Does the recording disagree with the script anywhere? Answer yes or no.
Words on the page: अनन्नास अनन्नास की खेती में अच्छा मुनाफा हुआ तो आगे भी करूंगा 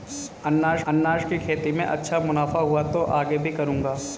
no